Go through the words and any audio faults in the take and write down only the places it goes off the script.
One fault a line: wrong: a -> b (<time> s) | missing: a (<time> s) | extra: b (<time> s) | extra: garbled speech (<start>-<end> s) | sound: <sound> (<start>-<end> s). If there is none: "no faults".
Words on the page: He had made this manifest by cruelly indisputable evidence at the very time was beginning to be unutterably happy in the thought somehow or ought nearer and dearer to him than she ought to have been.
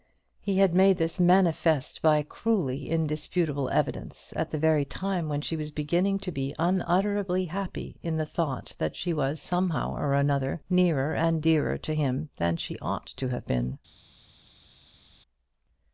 extra: when she (5.3 s)
extra: that she was (8.8 s)
wrong: ought -> another (10.2 s)